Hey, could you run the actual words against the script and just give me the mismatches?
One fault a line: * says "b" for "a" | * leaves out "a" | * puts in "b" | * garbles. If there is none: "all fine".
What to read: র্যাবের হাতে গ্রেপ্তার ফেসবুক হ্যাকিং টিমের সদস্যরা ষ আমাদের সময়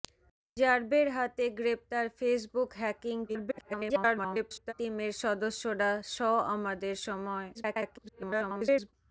* garbles
* garbles